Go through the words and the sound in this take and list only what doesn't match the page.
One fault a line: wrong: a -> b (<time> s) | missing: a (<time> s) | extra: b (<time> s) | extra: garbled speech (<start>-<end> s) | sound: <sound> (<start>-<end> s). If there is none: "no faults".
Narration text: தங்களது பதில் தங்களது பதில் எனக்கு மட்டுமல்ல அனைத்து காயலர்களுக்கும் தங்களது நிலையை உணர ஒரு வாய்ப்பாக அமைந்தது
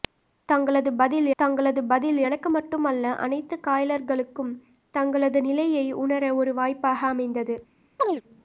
sound: chirp (8.0-8.2 s)